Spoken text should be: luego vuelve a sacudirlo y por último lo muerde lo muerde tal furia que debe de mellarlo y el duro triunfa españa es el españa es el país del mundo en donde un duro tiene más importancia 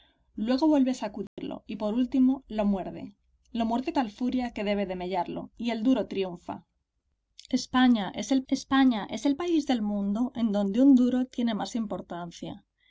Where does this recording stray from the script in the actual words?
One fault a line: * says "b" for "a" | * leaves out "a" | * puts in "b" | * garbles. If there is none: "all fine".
all fine